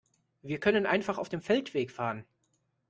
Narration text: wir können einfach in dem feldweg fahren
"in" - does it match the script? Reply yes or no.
no